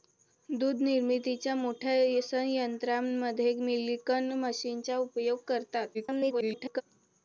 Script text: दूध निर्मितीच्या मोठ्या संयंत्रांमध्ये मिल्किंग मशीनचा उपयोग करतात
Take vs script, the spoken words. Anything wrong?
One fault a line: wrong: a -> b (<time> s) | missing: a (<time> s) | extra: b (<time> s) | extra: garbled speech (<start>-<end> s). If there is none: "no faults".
extra: garbled speech (5.9-6.8 s)